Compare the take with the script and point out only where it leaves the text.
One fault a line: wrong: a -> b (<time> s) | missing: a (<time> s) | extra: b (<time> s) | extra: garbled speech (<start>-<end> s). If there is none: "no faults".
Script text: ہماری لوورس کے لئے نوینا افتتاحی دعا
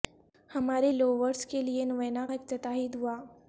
no faults